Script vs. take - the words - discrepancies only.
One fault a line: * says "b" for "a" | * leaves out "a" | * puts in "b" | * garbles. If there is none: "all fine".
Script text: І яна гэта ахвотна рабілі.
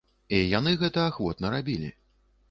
* says "яны" for "яна"